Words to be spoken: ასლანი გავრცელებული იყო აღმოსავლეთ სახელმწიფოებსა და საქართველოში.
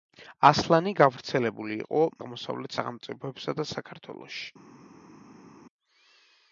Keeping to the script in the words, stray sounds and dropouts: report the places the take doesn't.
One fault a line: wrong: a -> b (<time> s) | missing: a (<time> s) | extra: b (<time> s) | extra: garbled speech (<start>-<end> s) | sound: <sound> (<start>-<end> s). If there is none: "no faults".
no faults